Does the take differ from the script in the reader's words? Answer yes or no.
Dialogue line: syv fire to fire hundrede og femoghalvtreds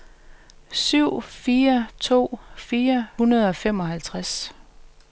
no